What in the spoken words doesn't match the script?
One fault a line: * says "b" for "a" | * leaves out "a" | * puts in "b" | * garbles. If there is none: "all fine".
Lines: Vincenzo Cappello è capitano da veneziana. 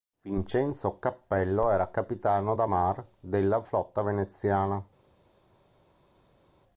* says "era" for "è"
* puts in "mar della flotta"